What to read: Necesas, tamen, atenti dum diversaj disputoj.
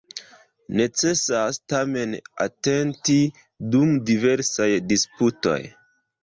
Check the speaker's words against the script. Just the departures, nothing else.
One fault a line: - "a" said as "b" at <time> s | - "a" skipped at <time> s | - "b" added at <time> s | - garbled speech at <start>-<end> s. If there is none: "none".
none